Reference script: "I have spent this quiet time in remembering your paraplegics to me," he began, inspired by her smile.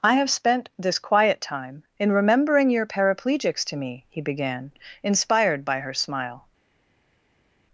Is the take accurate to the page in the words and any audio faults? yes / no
yes